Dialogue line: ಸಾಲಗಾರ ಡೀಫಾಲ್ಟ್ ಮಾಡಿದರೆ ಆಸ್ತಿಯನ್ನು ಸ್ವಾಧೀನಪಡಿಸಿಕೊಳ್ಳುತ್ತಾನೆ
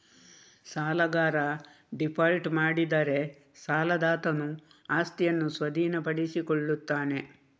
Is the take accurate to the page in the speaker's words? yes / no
no